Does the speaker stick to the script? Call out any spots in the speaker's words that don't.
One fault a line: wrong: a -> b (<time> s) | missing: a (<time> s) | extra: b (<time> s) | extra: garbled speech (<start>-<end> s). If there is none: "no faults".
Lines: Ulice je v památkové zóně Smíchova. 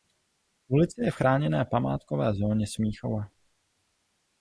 extra: chráněné (1.1 s)